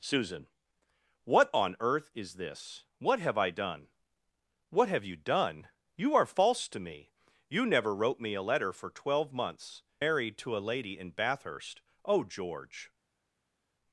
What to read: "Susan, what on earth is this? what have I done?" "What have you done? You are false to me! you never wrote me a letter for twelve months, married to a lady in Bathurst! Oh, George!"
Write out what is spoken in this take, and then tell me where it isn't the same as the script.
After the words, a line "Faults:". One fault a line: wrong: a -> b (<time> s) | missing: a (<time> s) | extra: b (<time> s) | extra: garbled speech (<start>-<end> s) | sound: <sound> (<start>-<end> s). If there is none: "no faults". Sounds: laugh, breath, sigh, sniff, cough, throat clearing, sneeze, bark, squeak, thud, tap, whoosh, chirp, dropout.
"Susan, what on earth is this? what have I done?" "What have you done? You are false to me! you never wrote me a letter for twelve months, married to a lady in Bathurst! Oh, George!"
Faults:
no faults